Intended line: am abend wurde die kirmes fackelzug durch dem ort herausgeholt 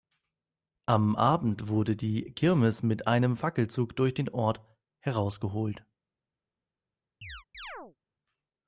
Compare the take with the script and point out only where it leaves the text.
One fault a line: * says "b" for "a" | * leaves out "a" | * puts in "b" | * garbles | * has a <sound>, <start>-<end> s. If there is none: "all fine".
* puts in "mit einem"
* says "den" for "dem"
* has a chirp, 7.2-8.0 s